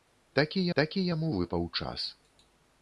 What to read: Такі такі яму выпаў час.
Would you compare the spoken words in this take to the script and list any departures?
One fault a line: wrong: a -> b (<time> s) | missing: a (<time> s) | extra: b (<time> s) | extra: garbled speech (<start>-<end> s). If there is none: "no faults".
no faults